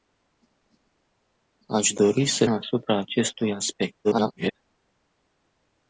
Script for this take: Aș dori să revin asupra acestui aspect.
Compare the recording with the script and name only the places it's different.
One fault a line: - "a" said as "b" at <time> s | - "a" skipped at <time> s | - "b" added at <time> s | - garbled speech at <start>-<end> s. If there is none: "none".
- "revin" skipped at 2.5 s
- garbled speech at 4.0-4.5 s